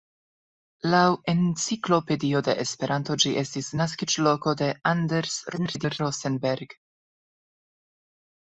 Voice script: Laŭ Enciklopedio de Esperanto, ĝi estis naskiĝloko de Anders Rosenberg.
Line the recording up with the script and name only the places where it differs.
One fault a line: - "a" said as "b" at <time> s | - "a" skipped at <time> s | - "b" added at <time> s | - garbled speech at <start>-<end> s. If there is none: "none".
- garbled speech at 5.5-6.0 s